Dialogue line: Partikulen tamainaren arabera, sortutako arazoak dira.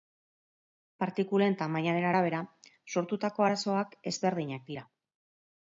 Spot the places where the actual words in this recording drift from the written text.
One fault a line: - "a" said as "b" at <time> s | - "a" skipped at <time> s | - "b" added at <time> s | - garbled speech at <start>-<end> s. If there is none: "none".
- "ezberdinak" added at 4.1 s